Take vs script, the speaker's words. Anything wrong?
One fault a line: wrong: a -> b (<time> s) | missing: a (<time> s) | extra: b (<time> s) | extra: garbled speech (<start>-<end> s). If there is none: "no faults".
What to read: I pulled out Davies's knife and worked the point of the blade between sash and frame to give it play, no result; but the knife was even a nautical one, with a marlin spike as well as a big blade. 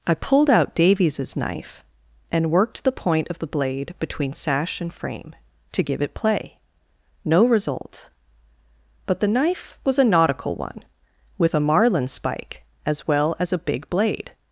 missing: even (10.0 s)